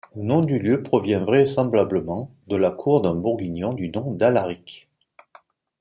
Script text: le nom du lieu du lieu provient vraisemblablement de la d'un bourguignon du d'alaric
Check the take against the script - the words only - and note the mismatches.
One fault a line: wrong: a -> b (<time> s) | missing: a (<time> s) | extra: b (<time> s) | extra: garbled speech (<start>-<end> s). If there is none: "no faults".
missing: du lieu (0.8 s)
extra: cour (2.7 s)
extra: nom (3.9 s)